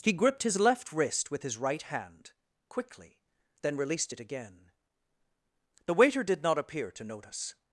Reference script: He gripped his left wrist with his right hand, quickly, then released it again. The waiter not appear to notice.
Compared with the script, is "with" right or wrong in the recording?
right